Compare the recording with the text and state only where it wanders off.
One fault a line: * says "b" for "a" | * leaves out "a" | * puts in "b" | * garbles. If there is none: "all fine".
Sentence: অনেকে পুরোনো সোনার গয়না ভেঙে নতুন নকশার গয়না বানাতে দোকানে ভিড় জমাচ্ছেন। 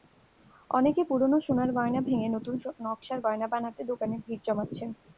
all fine